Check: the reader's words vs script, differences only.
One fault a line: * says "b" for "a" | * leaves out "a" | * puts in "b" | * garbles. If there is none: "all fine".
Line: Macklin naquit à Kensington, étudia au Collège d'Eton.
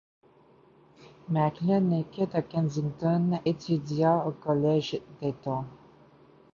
all fine